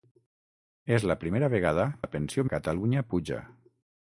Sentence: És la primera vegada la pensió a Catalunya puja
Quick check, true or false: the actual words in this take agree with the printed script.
true